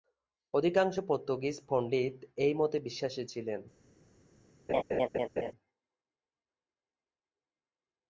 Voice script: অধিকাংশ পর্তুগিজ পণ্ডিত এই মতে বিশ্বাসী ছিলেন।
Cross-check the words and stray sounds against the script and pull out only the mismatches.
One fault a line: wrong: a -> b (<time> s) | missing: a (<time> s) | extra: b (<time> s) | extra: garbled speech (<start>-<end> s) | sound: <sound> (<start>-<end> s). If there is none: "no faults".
sound: laugh (4.7-5.5 s)